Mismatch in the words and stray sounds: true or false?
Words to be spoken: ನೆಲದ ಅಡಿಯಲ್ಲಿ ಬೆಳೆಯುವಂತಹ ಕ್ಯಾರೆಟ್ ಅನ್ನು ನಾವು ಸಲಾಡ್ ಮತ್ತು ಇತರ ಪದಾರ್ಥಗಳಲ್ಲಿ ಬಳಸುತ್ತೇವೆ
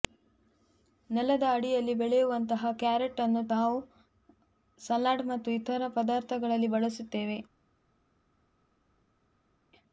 false